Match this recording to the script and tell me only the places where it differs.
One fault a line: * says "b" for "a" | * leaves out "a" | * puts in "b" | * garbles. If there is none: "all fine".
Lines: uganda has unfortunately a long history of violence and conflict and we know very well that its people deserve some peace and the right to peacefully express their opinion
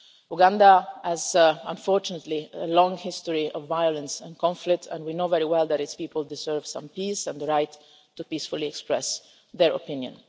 all fine